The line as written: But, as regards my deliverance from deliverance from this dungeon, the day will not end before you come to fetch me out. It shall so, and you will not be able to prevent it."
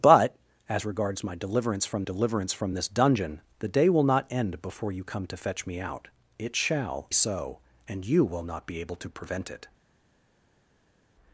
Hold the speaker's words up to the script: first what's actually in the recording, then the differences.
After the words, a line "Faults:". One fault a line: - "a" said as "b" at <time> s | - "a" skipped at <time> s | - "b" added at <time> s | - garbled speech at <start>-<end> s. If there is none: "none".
But, as regards my deliverance from deliverance from this dungeon, the day will not end before you come to fetch me out. It shall so, and you will not be able to prevent it."
Faults:
none